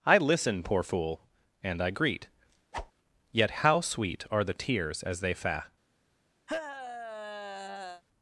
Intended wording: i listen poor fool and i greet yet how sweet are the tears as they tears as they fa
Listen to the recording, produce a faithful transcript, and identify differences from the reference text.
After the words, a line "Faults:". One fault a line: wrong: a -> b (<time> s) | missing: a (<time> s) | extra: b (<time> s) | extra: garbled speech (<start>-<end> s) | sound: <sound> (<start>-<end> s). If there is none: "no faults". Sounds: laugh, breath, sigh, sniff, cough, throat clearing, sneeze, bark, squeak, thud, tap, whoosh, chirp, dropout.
i listen poor fool and i greet yet how sweet are the tears as they fa
Faults:
sound: whoosh (2.7-2.9 s)
missing: tears as they (5.3 s)
sound: sigh (6.5-8.0 s)